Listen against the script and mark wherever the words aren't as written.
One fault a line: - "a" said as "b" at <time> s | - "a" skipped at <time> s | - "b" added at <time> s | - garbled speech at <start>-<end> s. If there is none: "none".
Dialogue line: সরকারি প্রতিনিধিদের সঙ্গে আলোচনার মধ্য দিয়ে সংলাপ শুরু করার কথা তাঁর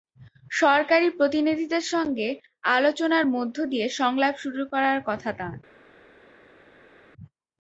none